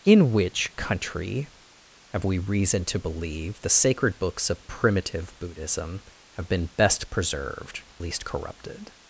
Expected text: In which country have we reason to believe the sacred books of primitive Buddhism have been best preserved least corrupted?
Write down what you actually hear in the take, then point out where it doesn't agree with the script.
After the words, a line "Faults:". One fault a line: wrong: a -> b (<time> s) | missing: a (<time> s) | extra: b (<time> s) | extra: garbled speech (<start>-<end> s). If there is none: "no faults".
In which country have we reason to believe the sacred books of primitive Buddhism have been best preserved least corrupted?
Faults:
no faults